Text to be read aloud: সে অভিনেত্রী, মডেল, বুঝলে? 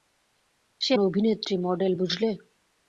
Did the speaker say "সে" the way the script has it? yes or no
yes